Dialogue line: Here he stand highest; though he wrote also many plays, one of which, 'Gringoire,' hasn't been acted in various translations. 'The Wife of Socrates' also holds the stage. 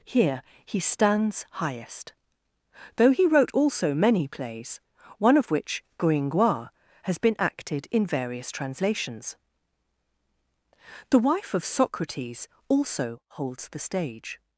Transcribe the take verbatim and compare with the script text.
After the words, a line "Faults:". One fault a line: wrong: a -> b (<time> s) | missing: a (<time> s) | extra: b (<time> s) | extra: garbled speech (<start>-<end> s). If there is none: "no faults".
Here he stands highest; though he wrote also many plays, one of which, 'Gringoire,' has been acted in various translations. 'The Wife of Socrates' also holds the stage.
Faults:
wrong: stand -> stands (0.8 s)
wrong: hasn't -> has (7.0 s)